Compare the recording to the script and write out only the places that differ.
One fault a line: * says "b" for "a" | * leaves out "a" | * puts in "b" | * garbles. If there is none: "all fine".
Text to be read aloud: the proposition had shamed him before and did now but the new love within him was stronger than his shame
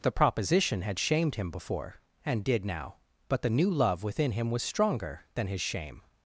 all fine